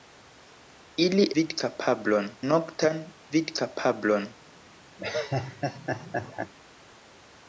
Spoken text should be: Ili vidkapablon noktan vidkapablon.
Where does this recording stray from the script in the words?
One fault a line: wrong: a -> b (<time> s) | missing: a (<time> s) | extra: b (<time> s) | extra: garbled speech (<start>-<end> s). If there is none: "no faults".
no faults